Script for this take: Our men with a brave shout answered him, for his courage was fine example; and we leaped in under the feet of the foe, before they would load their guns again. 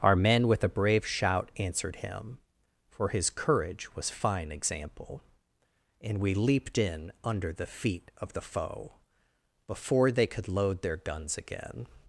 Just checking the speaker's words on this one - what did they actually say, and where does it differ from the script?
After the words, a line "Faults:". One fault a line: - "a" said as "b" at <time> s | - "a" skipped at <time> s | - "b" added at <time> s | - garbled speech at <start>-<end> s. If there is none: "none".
Our men with a brave shout answered him, for his courage was fine example; and we leaped in under the feet of the foe, before they could load their guns again.
Faults:
- "would" said as "could" at 10.3 s